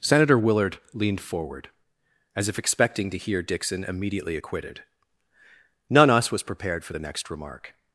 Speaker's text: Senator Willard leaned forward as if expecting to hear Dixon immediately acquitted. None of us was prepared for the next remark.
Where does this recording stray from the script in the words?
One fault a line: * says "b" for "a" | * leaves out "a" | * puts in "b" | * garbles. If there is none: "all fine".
* leaves out "of"